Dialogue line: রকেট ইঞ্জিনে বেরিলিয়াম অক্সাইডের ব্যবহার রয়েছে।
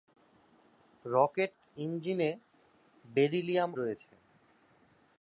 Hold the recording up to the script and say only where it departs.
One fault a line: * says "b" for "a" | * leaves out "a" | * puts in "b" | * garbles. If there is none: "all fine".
* leaves out "অক্সাইডের ব্যবহার"